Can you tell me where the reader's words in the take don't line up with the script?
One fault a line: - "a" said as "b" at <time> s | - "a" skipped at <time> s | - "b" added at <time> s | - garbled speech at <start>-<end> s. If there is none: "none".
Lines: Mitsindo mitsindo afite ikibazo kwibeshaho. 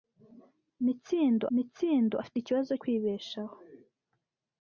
none